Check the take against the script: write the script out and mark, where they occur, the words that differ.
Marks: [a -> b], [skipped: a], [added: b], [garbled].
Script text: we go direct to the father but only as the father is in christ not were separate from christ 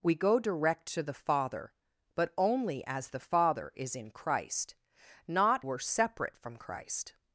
we go direct to the father but only as the father is in christ not were separate from christ